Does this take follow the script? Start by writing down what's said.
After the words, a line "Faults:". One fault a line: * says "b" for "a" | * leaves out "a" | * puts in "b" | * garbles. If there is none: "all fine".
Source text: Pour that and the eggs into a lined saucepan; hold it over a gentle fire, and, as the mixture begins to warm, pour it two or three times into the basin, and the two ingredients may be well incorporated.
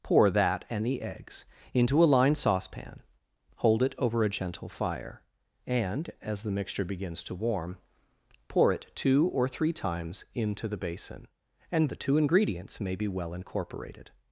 Pour that and the eggs into a lined saucepan; hold it over a gentle fire, and, as the mixture begins to warm, pour it two or three times into the basin, and the two ingredients may be well incorporated.
Faults:
all fine